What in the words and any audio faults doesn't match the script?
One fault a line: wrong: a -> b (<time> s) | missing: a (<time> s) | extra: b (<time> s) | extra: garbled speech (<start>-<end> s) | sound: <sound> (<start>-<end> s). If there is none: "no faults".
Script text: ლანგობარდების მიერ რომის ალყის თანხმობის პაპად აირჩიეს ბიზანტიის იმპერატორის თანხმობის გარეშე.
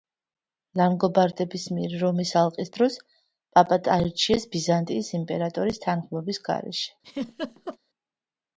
wrong: თანხმობის -> დროს (2.8 s)
sound: laugh (7.0-7.8 s)